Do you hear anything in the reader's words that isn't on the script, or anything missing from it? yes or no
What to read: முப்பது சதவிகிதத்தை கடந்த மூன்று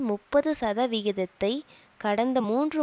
no